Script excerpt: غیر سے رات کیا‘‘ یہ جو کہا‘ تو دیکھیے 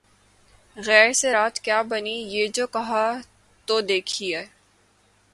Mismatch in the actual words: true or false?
true